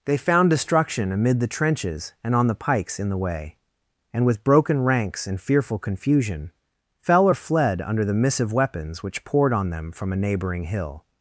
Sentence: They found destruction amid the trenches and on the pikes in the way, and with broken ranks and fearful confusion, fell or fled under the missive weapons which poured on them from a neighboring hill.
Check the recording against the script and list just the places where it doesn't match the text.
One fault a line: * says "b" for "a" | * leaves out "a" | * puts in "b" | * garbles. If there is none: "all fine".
all fine